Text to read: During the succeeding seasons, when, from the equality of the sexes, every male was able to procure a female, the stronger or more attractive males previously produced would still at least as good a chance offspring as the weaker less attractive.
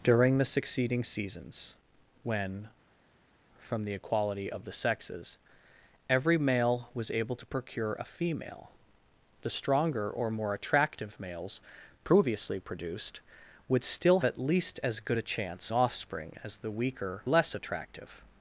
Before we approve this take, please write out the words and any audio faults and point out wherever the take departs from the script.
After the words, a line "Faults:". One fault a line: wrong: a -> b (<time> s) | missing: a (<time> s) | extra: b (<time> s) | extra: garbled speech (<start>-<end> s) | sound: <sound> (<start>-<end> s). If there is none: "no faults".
During the succeeding seasons, when, from the equality of the sexes, every male was able to procure a female, the stronger or more attractive males previously produced would still at least as good a chance offspring as the weaker less attractive.
Faults:
no faults